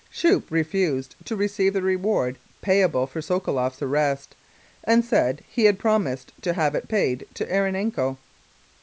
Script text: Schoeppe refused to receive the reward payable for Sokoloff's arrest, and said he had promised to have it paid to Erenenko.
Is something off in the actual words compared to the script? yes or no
no